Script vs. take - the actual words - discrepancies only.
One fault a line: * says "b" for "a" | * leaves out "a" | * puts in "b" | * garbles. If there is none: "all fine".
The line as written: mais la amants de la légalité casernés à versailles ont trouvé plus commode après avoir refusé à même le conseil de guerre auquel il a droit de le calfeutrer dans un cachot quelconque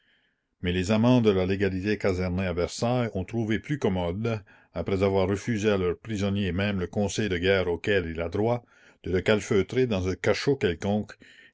* says "les" for "la"
* puts in "leur prisonnier"